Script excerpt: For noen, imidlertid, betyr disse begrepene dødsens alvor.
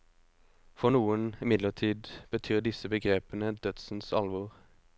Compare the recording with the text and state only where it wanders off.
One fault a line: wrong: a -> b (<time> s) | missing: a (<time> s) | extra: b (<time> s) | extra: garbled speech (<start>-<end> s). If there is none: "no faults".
no faults